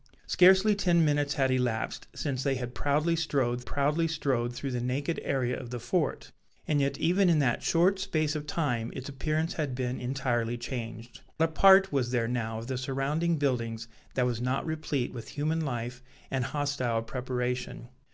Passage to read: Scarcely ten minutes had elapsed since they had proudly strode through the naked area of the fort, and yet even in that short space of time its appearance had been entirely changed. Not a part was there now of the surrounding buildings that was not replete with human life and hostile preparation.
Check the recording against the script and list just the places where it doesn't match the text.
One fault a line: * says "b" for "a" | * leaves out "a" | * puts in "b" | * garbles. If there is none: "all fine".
* puts in "proudly strode"
* leaves out "Not"